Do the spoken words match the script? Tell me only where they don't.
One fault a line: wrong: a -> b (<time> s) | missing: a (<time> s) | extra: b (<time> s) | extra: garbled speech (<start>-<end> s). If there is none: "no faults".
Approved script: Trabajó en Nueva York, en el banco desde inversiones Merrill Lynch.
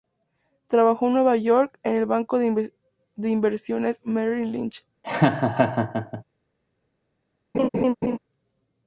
wrong: desde -> de (2.4 s)